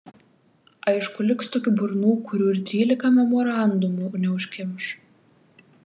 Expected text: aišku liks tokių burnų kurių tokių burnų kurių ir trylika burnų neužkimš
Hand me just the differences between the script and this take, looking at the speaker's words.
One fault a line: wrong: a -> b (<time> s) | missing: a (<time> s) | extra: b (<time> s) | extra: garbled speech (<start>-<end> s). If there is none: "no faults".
missing: tokių burnų kurių (2.5 s)
wrong: burnų -> memorandumų (3.2 s)